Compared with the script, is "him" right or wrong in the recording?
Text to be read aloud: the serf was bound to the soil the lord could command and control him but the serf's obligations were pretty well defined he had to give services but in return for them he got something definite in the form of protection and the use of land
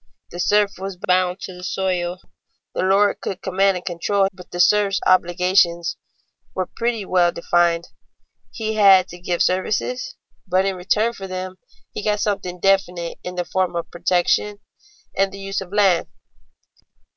wrong